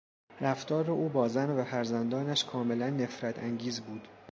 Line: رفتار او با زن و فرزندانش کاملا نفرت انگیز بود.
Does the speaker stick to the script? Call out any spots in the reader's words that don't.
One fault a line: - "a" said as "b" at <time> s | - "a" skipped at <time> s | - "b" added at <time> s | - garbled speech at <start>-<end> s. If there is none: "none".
none